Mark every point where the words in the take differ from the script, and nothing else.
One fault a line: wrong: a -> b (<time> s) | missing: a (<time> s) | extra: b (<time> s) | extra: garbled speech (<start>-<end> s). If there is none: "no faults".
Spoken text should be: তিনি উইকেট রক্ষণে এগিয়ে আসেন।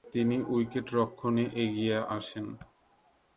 no faults